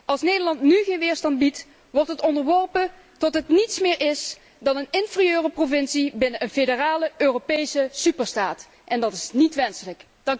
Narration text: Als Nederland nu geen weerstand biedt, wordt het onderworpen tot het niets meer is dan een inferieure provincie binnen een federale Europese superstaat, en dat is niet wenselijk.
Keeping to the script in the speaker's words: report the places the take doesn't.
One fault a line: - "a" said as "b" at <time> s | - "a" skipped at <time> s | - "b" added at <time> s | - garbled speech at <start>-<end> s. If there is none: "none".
none